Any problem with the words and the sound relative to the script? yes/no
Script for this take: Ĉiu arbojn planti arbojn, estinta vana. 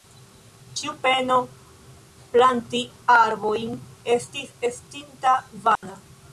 yes